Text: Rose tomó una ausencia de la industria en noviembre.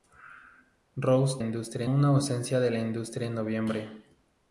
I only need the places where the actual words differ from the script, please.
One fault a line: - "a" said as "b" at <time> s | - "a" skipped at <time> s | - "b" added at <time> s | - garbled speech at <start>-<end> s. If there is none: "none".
- "tomó" said as "industria" at 1.4 s